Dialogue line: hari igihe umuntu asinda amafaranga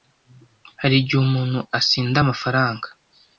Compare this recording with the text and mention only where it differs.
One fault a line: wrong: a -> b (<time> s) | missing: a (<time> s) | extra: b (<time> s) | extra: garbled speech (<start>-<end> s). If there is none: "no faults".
no faults